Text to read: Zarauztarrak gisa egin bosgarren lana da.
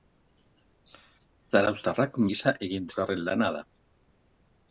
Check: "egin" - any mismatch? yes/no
no